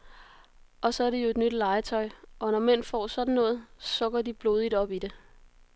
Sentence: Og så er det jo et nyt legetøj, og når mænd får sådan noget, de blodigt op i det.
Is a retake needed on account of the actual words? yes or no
yes